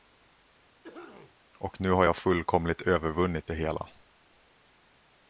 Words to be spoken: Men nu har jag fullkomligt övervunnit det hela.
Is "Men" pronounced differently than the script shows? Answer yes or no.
yes